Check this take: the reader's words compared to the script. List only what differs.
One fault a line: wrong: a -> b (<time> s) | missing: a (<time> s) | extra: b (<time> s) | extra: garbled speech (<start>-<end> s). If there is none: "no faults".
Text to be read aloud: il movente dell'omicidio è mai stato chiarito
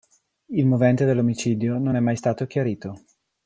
extra: non (1.8 s)